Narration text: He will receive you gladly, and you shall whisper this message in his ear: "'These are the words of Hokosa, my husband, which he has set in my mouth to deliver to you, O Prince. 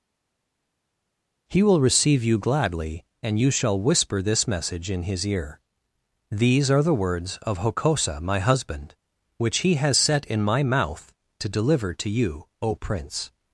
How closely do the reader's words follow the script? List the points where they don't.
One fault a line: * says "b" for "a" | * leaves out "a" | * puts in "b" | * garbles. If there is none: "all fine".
all fine